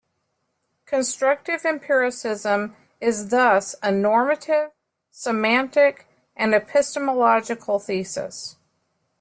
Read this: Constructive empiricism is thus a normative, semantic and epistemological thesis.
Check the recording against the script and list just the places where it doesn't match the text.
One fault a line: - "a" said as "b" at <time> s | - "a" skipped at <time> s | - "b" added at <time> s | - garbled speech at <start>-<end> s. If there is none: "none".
none